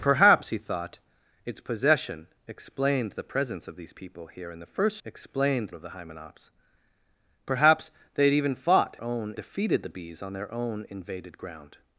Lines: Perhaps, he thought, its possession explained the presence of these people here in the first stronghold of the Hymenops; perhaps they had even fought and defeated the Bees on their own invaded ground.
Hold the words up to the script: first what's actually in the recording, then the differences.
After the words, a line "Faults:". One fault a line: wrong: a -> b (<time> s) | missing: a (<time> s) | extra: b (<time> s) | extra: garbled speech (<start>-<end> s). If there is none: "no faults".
Perhaps, he thought, its possession explained the presence of these people here in the first explained of the Hymenops; perhaps they had even fought own defeated the Bees on their own invaded ground.
Faults:
wrong: stronghold -> explained (5.0 s)
wrong: and -> own (9.0 s)